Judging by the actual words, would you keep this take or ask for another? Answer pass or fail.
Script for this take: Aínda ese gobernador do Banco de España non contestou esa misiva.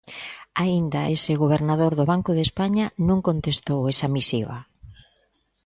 pass